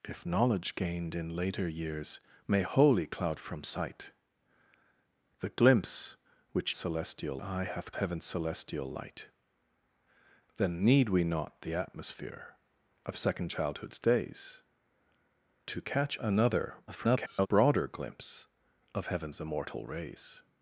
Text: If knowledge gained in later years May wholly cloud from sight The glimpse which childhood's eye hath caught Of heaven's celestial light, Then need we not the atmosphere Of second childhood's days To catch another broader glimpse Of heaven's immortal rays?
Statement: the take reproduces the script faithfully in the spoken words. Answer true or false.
false